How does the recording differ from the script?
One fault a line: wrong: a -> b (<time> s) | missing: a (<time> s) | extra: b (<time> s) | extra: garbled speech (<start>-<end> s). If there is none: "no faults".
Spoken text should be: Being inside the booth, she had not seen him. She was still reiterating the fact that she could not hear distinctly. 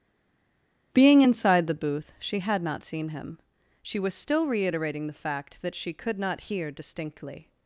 no faults